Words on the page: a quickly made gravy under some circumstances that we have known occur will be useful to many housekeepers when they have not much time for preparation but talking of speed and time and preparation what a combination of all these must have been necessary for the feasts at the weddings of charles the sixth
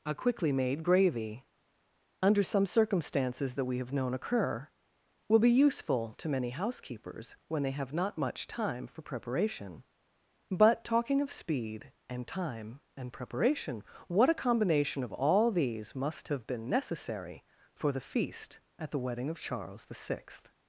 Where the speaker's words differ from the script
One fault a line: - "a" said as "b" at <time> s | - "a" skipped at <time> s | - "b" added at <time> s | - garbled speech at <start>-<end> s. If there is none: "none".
- "feasts" said as "feast" at 18.0 s
- "weddings" said as "wedding" at 19.0 s